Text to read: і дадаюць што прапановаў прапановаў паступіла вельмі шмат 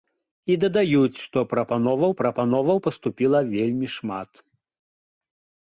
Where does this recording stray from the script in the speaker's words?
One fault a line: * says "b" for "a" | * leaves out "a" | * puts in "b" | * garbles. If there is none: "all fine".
all fine